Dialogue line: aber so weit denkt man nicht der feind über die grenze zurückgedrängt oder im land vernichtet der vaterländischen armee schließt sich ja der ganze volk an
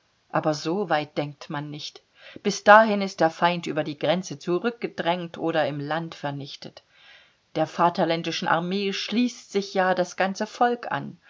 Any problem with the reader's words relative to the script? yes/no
yes